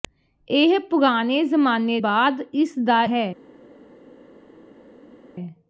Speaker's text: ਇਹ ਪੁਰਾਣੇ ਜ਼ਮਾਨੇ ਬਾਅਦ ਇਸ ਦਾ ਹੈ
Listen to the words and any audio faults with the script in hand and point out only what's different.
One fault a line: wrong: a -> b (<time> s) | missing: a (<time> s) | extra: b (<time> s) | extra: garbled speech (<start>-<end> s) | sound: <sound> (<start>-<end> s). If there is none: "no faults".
no faults